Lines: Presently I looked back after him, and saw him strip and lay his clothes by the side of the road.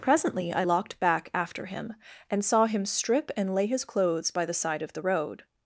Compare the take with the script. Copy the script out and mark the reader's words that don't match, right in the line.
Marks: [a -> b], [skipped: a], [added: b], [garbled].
Presently I [looked -> locked] back after him, and saw him strip and lay his clothes by the side of the road.